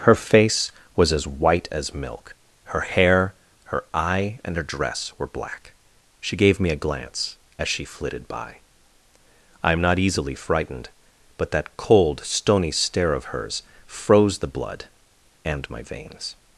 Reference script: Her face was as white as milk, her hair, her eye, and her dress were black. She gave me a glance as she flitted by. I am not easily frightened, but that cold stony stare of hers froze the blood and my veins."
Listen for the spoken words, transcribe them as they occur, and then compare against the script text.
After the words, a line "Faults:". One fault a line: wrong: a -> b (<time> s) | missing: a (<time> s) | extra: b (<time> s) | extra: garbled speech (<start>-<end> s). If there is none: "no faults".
Her face was as white as milk, her hair, her eye, and her dress were black. She gave me a glance as she flitted by. I am not easily frightened, but that cold stony stare of hers froze the blood and my veins."
Faults:
no faults